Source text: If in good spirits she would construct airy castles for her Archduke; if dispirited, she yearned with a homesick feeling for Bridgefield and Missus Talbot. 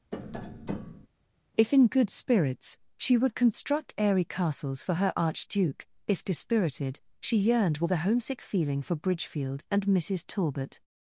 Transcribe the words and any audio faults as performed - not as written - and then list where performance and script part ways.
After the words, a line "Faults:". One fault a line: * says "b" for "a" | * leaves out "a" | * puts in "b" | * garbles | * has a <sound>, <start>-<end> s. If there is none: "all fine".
If in good spirits she would construct airy castles for her Archduke; if dispirited, she yearned with a homesick feeling for Bridgefield and Missus Talbot.
Faults:
* has a tap, 0.1-1.1 s